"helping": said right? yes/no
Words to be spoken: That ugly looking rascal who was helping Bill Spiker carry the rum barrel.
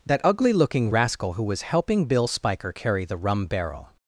yes